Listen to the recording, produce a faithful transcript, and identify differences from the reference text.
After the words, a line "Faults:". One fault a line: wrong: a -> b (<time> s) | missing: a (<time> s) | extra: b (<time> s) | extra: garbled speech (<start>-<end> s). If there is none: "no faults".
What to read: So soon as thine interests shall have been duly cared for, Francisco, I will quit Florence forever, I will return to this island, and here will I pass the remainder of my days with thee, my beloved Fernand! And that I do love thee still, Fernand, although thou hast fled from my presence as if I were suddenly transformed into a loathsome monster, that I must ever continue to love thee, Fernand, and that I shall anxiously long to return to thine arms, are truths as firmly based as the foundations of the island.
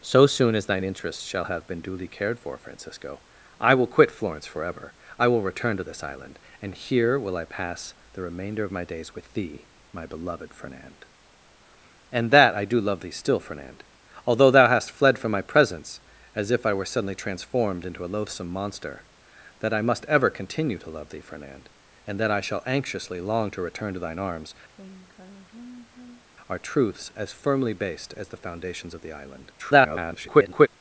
So soon as thine interests shall have been duly cared for, Francisco, I will quit Florence forever, I will return to this island, and here will I pass the remainder of my days with thee, my beloved Fernand! And that I do love thee still, Fernand, although thou hast fled from my presence as if I were suddenly transformed into a loathsome monster, that I must ever continue to love thee, Fernand, and that I shall anxiously long to return to thine arms, are truths as firmly based as the foundations of the island. [garbled]
Faults:
extra: garbled speech (29.6-30.7 s)